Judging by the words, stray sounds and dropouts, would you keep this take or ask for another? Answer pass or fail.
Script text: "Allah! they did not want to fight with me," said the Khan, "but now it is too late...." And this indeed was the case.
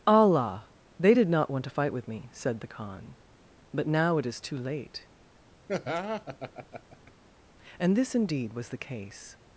fail